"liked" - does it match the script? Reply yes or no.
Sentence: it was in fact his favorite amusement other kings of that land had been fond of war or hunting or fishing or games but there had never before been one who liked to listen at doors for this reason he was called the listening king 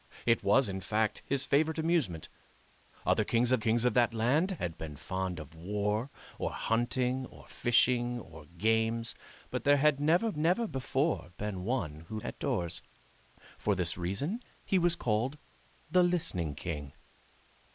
no